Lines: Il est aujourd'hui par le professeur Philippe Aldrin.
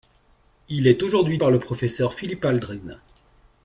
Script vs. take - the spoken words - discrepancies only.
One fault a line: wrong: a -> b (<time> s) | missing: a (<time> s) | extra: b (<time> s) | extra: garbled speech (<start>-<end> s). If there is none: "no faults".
no faults